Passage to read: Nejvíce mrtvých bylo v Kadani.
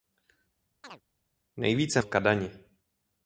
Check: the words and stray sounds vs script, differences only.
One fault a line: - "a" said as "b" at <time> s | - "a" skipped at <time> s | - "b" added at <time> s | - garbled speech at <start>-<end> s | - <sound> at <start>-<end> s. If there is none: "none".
- chirp at 0.8-1.0 s
- "mrtvých bylo" skipped at 2.0 s